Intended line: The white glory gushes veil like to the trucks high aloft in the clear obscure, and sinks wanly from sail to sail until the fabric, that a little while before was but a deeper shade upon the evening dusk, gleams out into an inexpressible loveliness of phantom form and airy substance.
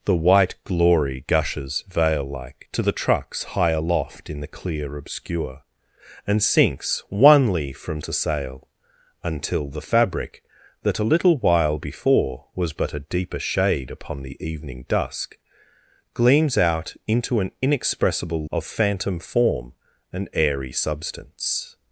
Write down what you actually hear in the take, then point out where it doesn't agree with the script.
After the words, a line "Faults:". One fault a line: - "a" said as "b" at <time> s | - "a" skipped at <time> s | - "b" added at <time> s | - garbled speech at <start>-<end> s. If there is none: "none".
The white glory gushes veil like to the trucks high aloft in the clear obscure, and sinks wanly from to sail until the fabric, that a little while before was but a deeper shade upon the evening dusk, gleams out into an inexpressible of phantom form and airy substance.
Faults:
- "sail" skipped at 8.0 s
- "loveliness" skipped at 18.4 s